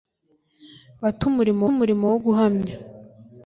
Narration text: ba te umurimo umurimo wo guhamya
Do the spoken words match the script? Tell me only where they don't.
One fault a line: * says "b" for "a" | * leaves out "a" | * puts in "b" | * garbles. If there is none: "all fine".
all fine